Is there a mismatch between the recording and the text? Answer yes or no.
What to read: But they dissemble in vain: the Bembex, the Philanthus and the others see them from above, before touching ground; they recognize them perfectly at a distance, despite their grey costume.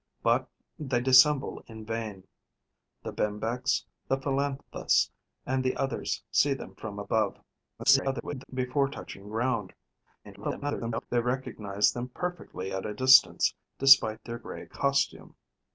yes